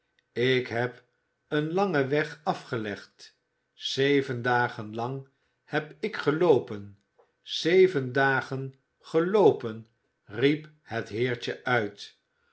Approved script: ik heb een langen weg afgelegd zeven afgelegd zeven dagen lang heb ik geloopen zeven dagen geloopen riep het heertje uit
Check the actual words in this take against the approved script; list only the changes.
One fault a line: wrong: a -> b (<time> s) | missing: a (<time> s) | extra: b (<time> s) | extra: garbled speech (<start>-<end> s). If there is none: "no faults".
missing: afgelegd zeven (4.4 s)